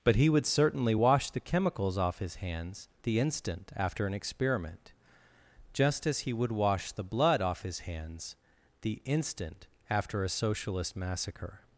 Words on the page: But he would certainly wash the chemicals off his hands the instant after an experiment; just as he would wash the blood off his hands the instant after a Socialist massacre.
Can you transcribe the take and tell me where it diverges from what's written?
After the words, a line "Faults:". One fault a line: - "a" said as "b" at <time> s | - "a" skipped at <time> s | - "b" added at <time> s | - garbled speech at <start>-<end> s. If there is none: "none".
But he would certainly wash the chemicals off his hands the instant after an experiment; just as he would wash the blood off his hands the instant after a Socialist massacre.
Faults:
none